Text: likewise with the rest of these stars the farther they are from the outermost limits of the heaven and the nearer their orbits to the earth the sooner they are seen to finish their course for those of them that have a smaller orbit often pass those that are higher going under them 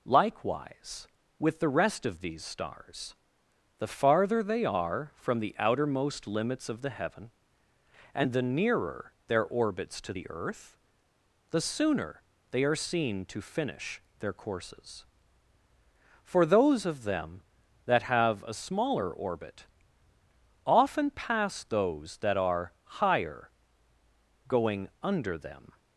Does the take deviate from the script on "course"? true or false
true